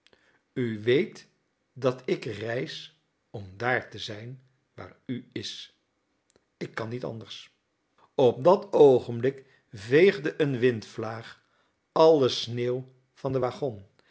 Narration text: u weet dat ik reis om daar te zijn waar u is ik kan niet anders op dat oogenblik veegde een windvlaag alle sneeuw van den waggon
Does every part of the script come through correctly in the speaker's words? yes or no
yes